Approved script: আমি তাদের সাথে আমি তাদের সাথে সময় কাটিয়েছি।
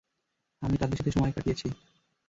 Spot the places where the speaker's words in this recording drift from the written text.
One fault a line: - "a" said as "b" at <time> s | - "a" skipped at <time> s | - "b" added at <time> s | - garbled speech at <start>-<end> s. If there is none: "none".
- "আমি তাদের সাথে" skipped at 1.1 s